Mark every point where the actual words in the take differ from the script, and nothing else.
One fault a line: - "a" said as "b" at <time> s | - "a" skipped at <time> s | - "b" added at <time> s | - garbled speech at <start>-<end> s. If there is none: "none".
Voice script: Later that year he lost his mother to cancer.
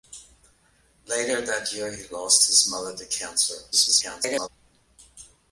- garbled speech at 3.7-4.5 s